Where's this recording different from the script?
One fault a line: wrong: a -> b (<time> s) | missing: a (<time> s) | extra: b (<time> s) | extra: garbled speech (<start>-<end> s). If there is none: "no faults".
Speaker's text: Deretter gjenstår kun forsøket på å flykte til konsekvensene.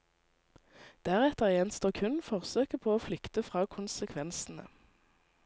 wrong: til -> fra (3.5 s)